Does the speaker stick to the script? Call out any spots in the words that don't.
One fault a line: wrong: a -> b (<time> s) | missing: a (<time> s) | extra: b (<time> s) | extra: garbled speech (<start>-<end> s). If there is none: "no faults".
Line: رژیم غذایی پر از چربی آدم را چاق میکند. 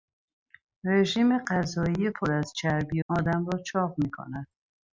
no faults